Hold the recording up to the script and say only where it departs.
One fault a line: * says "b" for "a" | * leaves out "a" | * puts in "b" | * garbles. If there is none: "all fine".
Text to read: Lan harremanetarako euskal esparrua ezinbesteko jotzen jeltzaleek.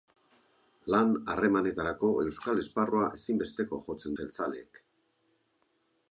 all fine